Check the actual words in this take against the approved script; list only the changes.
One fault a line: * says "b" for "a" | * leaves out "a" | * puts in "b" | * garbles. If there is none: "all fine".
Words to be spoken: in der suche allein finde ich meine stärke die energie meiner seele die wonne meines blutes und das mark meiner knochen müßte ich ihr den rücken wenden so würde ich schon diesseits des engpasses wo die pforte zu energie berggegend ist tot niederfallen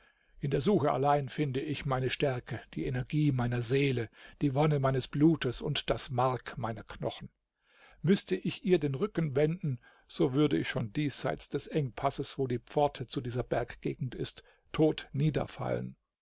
* says "dieser" for "energie"